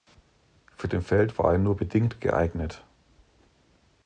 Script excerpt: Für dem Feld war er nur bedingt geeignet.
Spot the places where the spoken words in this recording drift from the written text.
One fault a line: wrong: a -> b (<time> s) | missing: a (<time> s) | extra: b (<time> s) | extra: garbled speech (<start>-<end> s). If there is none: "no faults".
no faults